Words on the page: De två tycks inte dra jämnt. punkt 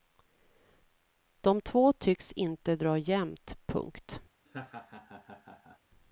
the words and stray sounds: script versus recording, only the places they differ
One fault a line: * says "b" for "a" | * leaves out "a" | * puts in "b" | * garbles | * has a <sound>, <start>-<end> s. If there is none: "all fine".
* has a laugh, 4.5-5.8 s